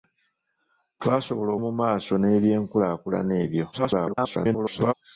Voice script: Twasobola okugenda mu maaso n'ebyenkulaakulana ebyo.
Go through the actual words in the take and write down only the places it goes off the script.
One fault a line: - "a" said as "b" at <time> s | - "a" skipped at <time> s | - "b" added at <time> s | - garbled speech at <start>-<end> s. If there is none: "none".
- "okugenda" skipped at 1.5 s
- garbled speech at 3.7-4.9 s